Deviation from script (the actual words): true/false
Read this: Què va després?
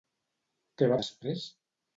false